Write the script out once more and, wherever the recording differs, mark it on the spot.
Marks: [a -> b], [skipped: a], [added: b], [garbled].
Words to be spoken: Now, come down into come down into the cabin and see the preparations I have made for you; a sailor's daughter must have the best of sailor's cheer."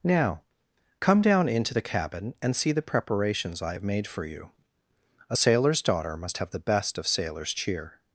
Now, come down into [skipped: come down into] the cabin and see the preparations I have made for you; a sailor's daughter must have the best of sailor's cheer."